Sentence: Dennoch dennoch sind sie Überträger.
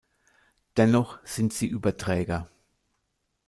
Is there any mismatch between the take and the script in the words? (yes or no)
yes